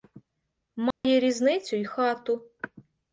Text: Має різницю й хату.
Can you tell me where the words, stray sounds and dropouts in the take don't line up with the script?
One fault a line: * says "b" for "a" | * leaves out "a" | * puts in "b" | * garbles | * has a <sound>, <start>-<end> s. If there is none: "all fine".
* has a dropout, 0.9-1.0 s